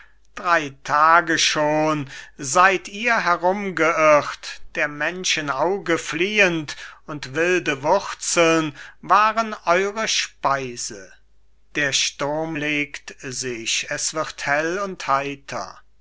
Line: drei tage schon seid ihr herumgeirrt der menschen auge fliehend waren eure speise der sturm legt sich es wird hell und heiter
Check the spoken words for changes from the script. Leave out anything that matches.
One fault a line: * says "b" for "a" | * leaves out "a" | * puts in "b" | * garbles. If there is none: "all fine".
* puts in "und wilde wurzeln"